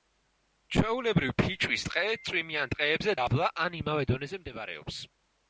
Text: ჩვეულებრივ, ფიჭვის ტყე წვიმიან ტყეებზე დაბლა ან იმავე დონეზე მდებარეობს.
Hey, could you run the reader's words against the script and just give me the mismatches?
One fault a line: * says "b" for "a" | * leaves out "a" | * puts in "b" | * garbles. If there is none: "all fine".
all fine